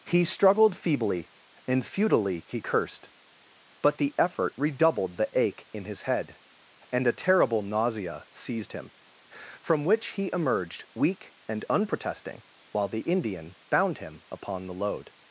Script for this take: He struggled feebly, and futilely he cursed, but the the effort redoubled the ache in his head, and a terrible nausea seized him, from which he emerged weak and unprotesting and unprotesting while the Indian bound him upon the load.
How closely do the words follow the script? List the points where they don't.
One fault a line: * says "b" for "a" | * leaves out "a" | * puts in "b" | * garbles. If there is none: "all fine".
* leaves out "the"
* leaves out "and unprotesting"